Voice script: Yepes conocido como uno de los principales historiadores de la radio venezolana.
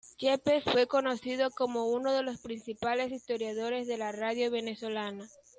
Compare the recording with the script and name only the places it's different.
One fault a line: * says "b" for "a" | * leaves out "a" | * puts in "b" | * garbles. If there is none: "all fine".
* puts in "fue"